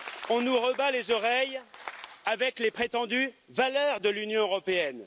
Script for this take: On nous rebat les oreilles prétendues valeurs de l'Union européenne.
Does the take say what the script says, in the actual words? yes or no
no